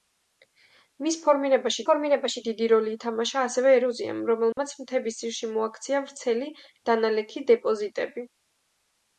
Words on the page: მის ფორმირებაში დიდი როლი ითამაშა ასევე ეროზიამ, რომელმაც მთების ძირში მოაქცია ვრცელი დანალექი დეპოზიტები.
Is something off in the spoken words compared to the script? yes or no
yes